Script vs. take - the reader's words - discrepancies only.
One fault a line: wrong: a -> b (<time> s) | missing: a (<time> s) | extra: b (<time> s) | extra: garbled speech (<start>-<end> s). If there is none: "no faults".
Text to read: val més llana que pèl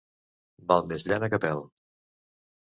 no faults